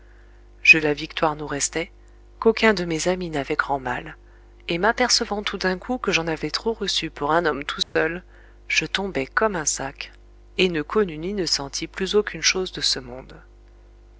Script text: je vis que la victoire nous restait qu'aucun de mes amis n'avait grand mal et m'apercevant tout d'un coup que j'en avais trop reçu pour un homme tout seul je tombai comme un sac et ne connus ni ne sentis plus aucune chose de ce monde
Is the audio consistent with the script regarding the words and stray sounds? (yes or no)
no